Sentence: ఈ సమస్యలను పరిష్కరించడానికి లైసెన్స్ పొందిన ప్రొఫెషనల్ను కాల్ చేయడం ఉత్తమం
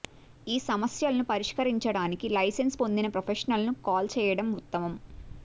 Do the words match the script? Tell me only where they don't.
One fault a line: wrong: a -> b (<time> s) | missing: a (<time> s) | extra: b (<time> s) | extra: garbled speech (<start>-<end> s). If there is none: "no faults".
no faults